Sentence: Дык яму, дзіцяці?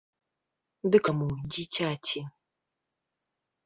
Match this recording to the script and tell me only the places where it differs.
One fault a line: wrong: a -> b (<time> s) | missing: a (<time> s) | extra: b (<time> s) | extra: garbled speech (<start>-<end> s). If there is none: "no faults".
no faults